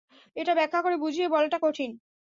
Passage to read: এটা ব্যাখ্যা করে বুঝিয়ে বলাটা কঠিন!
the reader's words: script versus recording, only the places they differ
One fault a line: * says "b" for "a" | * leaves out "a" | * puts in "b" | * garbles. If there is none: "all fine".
all fine